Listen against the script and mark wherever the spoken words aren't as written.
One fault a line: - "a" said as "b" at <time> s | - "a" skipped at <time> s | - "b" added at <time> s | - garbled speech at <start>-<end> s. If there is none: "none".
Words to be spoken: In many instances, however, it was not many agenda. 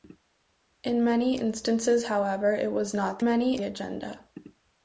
none